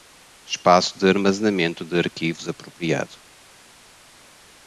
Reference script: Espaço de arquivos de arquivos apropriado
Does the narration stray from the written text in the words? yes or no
yes